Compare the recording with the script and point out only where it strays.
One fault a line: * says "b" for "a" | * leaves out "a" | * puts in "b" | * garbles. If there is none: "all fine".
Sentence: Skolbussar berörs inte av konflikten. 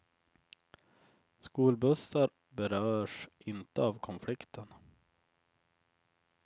all fine